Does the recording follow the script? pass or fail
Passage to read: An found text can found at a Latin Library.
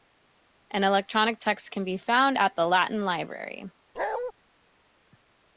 fail